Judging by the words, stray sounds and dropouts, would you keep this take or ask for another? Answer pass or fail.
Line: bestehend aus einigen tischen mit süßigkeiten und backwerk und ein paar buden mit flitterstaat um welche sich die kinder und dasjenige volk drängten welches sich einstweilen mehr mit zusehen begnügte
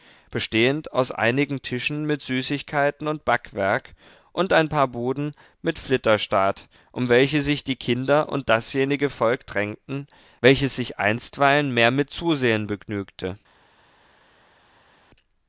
pass